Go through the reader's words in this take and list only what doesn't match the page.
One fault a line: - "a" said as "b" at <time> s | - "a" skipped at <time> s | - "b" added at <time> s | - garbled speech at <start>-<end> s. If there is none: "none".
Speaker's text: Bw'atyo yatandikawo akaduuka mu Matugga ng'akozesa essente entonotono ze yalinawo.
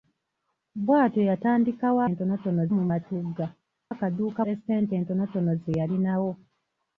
- "akaduuka" said as "entonotono" at 2.1 s
- "ng'akozesa" said as "akaduuka" at 3.9 s